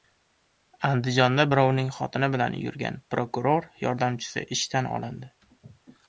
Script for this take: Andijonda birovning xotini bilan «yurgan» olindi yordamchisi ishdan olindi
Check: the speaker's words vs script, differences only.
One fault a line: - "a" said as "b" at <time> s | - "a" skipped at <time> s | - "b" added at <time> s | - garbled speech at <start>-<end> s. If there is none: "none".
- "olindi" said as "prokuror" at 3.1 s